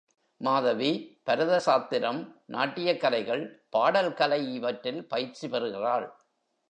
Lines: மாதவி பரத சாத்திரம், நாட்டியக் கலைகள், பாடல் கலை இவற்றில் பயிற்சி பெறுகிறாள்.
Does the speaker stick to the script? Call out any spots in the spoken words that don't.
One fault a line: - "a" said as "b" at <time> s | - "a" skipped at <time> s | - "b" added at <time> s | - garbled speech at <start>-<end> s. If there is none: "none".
none